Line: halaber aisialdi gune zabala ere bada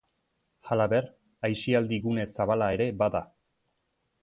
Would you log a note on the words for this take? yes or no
no